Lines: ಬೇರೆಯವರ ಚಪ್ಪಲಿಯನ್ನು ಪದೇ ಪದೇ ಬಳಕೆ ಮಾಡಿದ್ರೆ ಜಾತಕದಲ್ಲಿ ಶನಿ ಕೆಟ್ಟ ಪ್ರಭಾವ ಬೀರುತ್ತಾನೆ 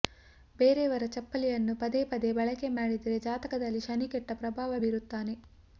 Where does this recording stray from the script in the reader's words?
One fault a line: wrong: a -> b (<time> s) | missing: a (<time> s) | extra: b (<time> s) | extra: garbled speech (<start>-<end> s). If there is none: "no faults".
no faults